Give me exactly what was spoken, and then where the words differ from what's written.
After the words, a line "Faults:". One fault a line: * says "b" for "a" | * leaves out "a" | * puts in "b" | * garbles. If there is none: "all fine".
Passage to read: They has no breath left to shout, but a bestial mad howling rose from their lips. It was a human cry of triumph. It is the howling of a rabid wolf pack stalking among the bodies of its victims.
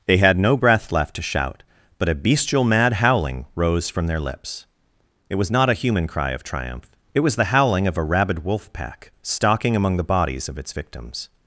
They had no breath left to shout, but a bestial mad howling rose from their lips. It was not a human cry of triumph. It was the howling of a rabid wolf pack stalking among the bodies of its victims.
Faults:
* says "had" for "has"
* puts in "not"
* says "was" for "is"